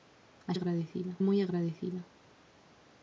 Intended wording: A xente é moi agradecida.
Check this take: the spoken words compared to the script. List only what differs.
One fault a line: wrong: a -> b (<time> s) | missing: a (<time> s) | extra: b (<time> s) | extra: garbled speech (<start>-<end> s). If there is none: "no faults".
wrong: xente -> agradecida (0.5 s)